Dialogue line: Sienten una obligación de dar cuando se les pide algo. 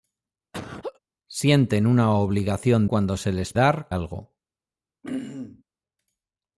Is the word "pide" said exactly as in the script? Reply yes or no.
no